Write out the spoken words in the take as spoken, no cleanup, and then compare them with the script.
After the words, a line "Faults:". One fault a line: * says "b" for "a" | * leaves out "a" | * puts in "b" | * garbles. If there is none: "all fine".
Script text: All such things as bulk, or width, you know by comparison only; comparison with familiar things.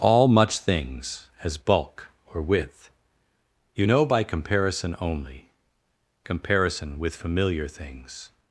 All much things as bulk, or width, you know by comparison only; comparison with familiar things.
Faults:
* says "much" for "such"